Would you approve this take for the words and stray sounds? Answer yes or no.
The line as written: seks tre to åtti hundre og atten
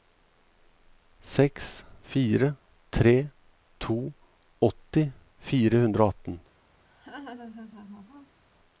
no